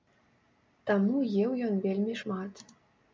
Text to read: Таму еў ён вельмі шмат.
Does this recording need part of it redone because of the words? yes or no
no